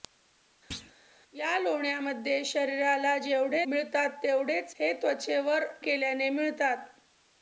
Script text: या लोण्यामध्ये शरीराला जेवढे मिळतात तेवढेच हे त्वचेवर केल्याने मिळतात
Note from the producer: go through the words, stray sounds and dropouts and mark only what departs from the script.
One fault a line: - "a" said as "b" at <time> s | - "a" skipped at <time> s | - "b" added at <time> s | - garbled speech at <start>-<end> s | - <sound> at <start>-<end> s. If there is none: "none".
- thud at 0.7-0.9 s